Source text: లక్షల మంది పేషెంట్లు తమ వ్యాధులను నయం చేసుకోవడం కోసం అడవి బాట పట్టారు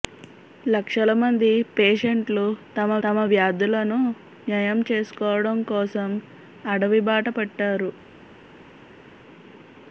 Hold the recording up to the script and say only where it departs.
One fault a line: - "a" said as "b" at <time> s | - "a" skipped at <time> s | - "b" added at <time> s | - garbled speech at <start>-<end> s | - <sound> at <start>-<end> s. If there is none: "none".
- "తమ" added at 3.0 s